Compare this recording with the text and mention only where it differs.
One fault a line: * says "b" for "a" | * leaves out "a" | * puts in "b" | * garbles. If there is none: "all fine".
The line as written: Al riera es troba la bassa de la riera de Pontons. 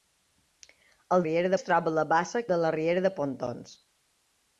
all fine